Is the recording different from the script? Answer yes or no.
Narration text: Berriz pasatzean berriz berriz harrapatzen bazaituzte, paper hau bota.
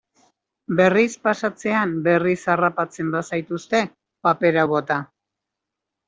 yes